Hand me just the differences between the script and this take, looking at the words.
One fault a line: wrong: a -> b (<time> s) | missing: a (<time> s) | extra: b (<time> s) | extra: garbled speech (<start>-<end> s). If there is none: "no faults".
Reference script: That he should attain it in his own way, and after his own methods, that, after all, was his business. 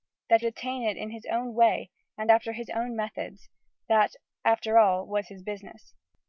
missing: he should (0.4 s)